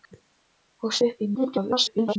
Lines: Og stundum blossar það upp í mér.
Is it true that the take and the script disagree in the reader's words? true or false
true